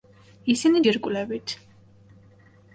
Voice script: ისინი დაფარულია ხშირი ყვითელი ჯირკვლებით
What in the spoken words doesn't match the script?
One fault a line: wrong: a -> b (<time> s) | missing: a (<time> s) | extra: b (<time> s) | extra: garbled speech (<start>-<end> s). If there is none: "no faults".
missing: დაფარულია ხშირი ყვითელი (0.8 s)